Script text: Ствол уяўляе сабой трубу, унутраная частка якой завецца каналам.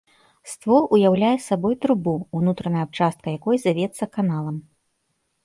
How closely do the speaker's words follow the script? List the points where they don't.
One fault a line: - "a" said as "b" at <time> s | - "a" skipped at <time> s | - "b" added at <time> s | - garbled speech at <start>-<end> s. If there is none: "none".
none